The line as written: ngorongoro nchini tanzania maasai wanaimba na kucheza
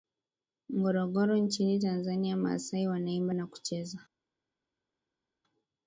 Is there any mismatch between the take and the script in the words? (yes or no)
no